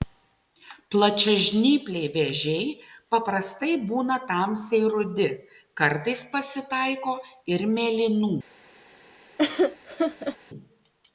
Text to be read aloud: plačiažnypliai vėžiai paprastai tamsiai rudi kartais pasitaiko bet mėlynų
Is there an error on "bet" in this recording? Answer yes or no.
yes